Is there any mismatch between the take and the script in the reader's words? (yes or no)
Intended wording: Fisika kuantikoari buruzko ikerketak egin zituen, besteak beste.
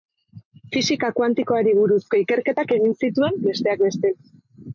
no